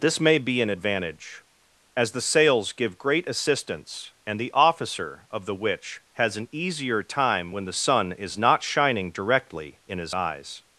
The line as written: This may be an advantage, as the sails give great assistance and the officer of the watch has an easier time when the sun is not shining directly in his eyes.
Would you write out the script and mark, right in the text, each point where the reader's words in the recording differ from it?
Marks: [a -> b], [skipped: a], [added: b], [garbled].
This may be an advantage, as the sails give great assistance and the officer of the [watch -> witch] has an easier time when the sun is not shining directly in his eyes.